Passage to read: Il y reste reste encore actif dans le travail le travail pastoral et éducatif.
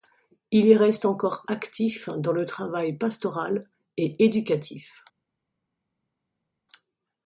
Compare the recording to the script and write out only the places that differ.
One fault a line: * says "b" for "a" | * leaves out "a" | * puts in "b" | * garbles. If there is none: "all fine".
* leaves out "reste"
* leaves out "le travail"